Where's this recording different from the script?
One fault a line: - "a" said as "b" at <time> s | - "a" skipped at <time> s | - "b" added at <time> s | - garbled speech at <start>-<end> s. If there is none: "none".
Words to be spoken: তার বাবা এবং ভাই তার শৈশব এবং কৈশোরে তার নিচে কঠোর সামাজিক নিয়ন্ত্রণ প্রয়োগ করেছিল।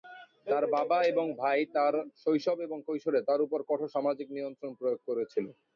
- "নিচে" said as "উপর" at 3.5 s